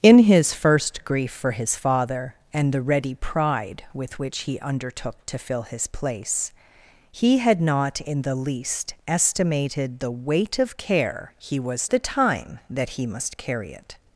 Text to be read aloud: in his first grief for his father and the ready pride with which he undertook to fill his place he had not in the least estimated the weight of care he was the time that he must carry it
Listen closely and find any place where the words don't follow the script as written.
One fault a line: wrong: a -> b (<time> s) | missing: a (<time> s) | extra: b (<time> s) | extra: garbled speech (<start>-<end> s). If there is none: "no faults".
no faults